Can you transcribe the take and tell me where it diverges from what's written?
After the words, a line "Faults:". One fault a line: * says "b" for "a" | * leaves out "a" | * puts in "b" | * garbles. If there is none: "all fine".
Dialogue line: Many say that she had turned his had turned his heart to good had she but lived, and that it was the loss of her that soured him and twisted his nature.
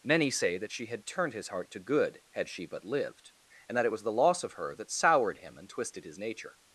Many say that she had turned his heart to good had she but lived, and that it was the loss of her that soured him and twisted his nature.
Faults:
* leaves out "had turned his"